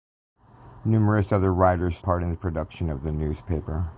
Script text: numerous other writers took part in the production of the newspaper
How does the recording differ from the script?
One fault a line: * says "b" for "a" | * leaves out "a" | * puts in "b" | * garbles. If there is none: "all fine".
* leaves out "took"